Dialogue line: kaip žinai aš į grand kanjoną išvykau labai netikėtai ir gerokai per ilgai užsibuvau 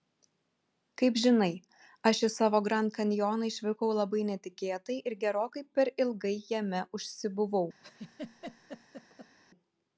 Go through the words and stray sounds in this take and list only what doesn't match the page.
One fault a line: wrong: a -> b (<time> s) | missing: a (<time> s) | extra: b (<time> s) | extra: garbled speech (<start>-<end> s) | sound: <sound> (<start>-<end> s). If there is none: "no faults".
extra: savo (2.4 s)
extra: jame (6.5 s)
sound: laugh (7.8-9.4 s)